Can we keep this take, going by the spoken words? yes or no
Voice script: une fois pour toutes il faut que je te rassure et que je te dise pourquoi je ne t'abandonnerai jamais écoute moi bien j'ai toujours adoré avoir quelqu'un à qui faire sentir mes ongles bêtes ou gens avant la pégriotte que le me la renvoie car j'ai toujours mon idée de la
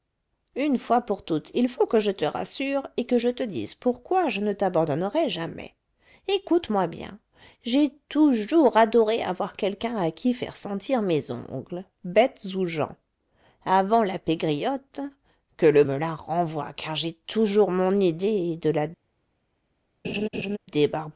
yes